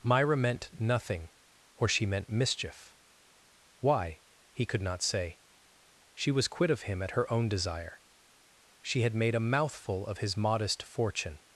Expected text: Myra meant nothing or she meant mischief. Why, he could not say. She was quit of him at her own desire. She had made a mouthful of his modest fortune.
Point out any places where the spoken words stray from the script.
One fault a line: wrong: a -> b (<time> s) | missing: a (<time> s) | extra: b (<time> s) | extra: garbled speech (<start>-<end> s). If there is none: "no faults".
no faults